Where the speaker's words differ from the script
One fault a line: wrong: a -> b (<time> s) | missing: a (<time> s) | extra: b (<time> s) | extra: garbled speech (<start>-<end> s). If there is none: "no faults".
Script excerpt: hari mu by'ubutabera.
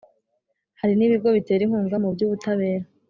extra: n'ibigo bitera inkunga (0.9 s)